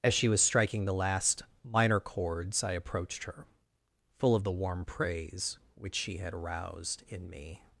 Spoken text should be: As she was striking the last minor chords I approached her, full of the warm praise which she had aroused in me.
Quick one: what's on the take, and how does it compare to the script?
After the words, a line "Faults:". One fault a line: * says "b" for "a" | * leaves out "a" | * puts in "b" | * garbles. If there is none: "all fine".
As she was striking the last minor chords I approached her, full of the warm praise which she had aroused in me.
Faults:
all fine